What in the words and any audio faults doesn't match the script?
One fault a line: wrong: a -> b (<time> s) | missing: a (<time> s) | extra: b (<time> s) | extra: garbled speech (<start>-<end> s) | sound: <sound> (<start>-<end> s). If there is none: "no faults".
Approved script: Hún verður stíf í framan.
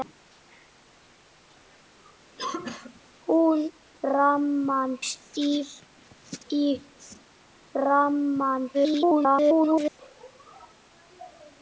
sound: cough (2.4-3.0 s)
wrong: verður -> framan (4.0 s)
extra: garbled speech (8.7-10.0 s)